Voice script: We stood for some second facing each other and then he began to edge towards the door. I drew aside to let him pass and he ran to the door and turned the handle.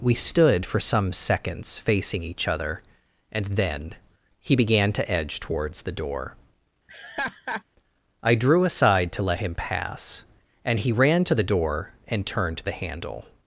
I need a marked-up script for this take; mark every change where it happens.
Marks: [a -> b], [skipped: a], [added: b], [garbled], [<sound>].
We stood for some [second -> seconds] facing each other and then he began to edge towards the door. [laugh] I drew aside to let him pass and he ran to the door and turned the handle.